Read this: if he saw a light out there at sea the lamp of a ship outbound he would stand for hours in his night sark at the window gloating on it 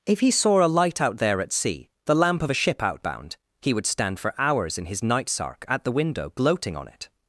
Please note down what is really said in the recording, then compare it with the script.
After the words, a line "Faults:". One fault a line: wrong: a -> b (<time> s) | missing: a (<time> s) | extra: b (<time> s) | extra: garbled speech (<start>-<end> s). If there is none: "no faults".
if he saw a light out there at sea the lamp of a ship outbound he would stand for hours in his night sark at the window gloating on it
Faults:
no faults